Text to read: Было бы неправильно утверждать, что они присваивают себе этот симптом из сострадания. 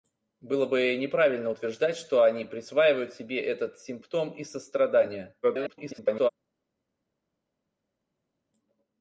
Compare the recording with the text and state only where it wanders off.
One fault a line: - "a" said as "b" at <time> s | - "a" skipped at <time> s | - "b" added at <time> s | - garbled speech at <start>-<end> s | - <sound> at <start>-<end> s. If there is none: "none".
- garbled speech at 5.4-6.3 s